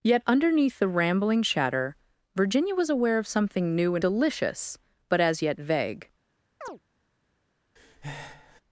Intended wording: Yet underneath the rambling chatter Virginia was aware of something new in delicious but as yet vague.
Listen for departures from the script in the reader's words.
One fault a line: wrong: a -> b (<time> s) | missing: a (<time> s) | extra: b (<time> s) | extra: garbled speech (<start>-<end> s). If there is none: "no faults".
no faults